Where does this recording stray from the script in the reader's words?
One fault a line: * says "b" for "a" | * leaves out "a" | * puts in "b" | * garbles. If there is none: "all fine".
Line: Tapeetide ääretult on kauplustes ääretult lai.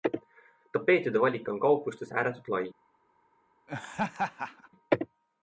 * says "valik" for "ääretult"